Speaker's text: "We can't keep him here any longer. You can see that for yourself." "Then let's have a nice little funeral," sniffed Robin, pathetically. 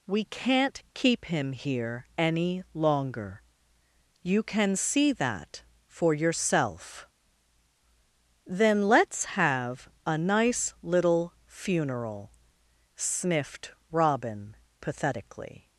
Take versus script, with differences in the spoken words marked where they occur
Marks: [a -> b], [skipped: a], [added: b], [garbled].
"We can't keep him here any longer. You can see that for yourself." "Then let's have a nice little funeral," sniffed Robin, pathetically.